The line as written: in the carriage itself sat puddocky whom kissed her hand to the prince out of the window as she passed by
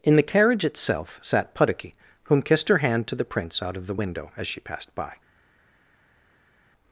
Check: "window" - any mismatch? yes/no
no